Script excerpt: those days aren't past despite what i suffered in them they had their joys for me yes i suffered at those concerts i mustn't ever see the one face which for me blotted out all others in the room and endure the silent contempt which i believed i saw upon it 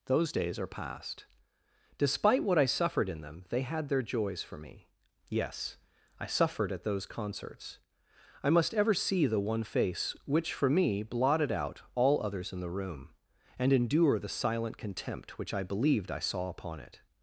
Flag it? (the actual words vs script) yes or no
yes